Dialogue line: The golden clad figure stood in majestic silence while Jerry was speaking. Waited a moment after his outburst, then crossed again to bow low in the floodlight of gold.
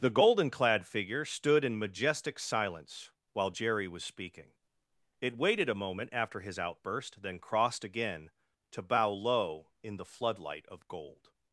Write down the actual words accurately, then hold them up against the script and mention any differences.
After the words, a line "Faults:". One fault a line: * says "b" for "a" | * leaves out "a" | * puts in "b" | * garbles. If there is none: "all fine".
The golden clad figure stood in majestic silence while Jerry was speaking. It waited a moment after his outburst, then crossed again to bow low in the floodlight of gold.
Faults:
* puts in "It"